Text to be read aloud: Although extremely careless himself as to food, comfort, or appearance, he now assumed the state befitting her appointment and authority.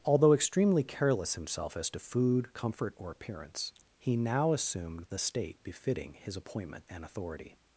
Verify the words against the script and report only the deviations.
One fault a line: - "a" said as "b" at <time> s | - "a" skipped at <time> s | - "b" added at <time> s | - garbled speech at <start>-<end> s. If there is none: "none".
- "her" said as "his" at 6.1 s